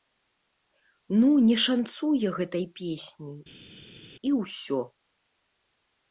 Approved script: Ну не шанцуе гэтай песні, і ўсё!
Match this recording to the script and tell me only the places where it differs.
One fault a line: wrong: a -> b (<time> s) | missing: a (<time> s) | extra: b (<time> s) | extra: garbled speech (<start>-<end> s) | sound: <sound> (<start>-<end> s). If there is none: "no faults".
no faults